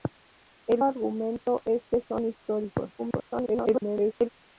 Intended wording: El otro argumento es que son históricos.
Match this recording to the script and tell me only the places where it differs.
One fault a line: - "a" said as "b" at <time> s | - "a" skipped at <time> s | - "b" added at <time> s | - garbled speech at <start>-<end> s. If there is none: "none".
- "otro" skipped at 0.8 s
- garbled speech at 3.0-4.3 s